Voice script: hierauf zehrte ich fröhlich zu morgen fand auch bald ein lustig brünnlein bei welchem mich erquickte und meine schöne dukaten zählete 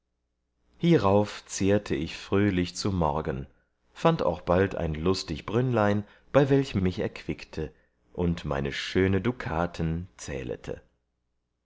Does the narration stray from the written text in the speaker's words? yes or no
no